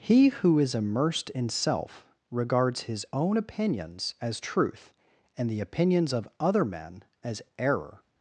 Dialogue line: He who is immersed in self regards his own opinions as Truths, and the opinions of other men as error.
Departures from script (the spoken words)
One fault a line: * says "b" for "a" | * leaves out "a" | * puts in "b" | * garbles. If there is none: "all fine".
* says "Truth" for "Truths"